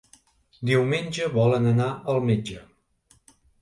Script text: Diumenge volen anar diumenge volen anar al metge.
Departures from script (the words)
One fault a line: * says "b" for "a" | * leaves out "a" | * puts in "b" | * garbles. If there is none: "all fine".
* leaves out "diumenge volen anar"